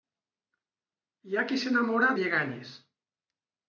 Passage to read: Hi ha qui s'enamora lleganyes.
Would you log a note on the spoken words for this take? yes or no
no